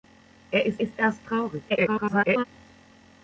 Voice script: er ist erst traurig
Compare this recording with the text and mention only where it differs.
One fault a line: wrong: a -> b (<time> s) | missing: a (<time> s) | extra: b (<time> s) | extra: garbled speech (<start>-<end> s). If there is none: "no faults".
extra: ist (0.8 s)
extra: garbled speech (1.7-2.4 s)